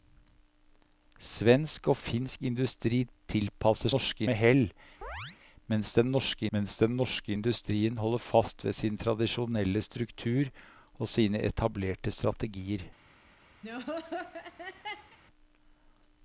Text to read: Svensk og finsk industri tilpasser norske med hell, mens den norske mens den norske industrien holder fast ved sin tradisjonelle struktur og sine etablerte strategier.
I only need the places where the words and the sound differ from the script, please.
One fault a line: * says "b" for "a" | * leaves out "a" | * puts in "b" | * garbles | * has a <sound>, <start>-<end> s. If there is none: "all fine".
* has a chirp, 5.0-5.4 s
* has a laugh, 13.6-15.2 s